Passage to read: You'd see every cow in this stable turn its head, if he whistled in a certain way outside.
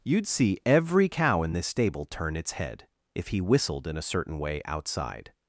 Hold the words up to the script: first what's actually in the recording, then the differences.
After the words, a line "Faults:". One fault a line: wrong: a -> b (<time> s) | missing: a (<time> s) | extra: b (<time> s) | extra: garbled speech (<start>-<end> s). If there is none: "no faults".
You'd see every cow in this stable turn its head, if he whistled in a certain way outside.
Faults:
no faults